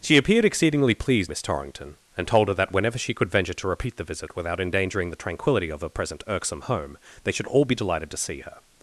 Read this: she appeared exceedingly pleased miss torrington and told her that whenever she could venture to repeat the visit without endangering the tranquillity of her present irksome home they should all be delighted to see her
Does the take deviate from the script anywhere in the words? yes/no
no